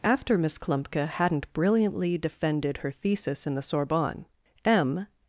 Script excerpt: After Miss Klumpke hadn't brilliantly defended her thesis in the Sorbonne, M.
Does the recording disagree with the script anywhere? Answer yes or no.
no